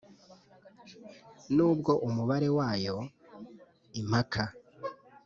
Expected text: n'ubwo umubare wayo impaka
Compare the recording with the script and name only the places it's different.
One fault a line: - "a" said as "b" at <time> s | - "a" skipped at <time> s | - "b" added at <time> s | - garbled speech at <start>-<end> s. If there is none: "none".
none